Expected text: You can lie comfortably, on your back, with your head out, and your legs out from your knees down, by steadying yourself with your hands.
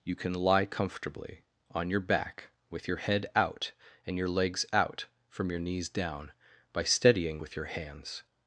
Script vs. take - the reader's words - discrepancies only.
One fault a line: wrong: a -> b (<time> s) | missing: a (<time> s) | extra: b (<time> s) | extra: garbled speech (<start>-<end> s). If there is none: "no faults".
missing: yourself (7.4 s)